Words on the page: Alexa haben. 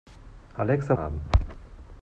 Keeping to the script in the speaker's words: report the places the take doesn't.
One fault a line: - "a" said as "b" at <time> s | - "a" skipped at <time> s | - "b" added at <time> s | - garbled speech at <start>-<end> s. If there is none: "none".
none